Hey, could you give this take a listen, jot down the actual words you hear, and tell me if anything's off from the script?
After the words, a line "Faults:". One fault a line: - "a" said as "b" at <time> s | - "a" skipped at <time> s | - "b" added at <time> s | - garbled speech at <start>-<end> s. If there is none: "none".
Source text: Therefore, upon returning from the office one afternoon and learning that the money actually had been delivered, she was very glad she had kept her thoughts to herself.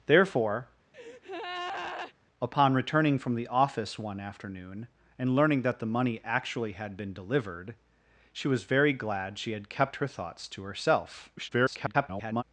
Therefore, upon returning from the office one afternoon and learning that the money actually had been delivered, she was very glad she had kept her thoughts to herself. [garbled]
Faults:
- garbled speech at 11.4-12.4 s